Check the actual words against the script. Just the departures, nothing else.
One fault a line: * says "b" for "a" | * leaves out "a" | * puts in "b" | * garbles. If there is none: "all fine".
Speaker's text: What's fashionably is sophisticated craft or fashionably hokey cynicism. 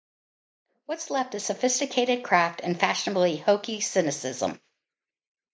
* says "left" for "fashionably"
* says "and" for "or"